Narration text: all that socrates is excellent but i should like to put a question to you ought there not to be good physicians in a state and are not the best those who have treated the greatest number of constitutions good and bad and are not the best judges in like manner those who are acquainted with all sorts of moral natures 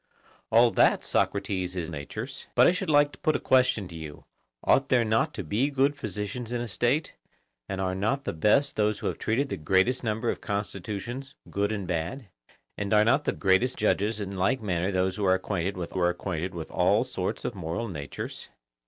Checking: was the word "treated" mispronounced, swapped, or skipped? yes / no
no